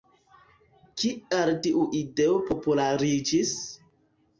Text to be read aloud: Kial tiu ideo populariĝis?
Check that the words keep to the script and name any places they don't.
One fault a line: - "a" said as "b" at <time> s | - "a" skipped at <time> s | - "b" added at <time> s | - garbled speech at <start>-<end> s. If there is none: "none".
none